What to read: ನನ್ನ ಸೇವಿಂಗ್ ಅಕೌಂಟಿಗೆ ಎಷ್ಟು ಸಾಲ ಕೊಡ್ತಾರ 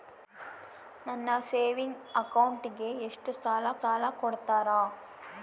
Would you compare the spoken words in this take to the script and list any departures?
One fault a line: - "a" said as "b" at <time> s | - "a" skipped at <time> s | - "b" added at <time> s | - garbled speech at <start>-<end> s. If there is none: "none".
- "ಸಾಲ" added at 3.8 s